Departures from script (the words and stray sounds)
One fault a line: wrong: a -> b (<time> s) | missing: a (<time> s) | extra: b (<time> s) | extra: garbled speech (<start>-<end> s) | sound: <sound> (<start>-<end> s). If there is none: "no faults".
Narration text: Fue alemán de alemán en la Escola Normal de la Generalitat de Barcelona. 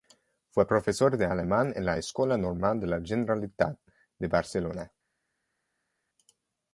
wrong: alemán -> profesor (0.6 s)